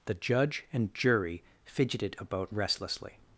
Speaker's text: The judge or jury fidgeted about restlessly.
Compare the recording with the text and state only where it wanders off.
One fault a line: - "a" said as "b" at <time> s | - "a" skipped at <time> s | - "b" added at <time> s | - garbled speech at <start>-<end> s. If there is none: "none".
- "or" said as "and" at 0.7 s